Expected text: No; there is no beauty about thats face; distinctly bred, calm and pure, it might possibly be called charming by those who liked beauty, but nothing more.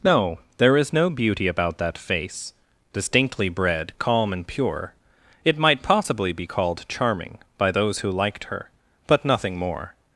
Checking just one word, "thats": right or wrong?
wrong